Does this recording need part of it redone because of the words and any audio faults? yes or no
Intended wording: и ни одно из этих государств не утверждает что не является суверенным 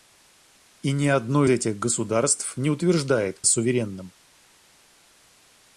yes